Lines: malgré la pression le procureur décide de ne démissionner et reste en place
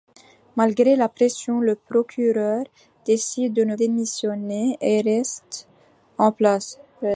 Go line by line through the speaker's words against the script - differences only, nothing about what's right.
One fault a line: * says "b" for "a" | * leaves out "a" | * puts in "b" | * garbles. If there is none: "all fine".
all fine